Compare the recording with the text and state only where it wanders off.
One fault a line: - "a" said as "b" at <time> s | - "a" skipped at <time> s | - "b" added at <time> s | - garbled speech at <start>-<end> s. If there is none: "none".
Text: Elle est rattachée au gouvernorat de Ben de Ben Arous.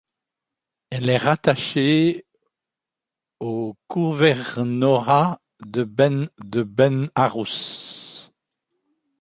none